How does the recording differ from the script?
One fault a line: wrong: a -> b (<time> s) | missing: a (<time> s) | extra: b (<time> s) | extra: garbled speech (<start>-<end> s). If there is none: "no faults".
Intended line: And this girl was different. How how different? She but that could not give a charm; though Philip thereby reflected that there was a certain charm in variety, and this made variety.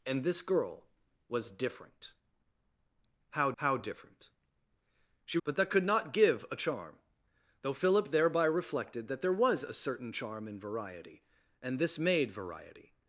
no faults